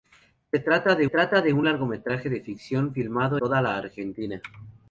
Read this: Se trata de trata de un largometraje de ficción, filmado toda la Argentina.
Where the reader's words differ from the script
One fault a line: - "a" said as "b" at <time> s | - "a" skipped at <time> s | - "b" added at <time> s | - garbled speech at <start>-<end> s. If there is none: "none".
none